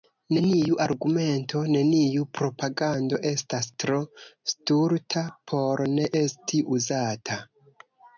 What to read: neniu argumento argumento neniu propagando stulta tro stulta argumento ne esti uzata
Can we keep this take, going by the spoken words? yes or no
no